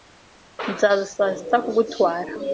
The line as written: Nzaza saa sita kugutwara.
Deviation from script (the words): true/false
false